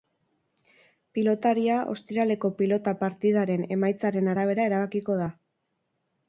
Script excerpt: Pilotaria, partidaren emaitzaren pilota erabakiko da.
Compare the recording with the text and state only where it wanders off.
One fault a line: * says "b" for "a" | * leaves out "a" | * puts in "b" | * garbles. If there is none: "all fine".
* puts in "ostiraleko pilota"
* says "arabera" for "pilota"